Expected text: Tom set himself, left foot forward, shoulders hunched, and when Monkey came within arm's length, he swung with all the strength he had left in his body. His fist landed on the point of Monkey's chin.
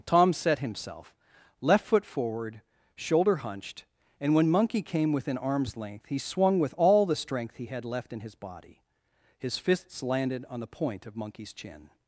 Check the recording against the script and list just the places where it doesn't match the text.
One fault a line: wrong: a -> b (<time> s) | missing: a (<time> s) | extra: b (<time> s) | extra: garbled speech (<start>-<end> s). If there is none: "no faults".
wrong: shoulders -> shoulder (3.0 s)
wrong: fist -> fists (9.6 s)